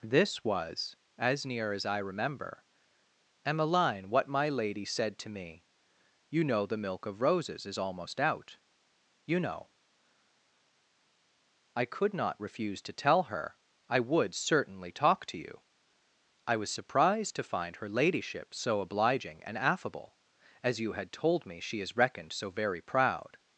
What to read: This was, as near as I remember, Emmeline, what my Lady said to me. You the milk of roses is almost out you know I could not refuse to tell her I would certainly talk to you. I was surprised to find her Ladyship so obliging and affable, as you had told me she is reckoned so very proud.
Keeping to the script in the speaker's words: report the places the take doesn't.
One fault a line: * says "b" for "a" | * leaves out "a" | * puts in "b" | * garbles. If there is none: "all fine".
* puts in "know"